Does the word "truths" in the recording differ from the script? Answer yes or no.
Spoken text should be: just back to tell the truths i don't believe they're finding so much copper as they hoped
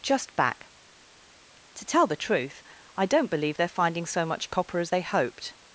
yes